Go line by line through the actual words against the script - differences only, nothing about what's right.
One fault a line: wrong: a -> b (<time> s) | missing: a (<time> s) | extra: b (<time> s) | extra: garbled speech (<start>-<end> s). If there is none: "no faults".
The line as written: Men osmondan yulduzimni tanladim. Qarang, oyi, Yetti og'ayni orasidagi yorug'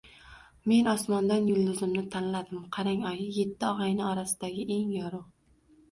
extra: eng (4.8 s)